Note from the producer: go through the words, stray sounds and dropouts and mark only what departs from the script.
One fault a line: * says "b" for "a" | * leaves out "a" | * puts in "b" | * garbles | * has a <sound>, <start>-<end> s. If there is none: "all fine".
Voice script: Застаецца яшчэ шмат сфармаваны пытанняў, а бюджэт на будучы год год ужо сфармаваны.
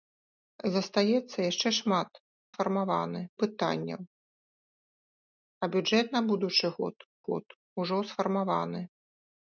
all fine